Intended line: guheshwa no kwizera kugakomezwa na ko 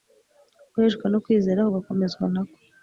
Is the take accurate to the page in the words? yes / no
yes